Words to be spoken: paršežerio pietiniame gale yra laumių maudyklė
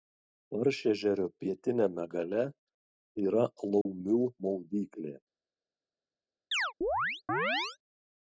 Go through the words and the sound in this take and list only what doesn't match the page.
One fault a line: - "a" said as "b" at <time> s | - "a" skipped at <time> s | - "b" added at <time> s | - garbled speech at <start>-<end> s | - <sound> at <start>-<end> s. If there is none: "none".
- dropout at 3.8-3.9 s
- chirp at 6.5-7.8 s